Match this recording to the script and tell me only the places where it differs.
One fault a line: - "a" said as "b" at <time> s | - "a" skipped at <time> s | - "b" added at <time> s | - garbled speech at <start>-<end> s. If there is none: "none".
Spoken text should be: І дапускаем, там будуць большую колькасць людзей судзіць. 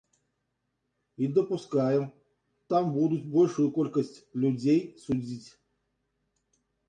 none